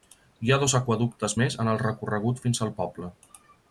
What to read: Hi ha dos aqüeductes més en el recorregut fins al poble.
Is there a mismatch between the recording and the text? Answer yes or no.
no